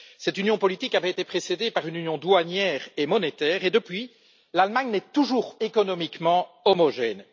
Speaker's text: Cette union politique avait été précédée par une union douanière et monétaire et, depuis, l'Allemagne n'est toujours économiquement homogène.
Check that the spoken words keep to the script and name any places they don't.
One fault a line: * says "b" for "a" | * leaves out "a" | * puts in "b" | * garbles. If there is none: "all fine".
all fine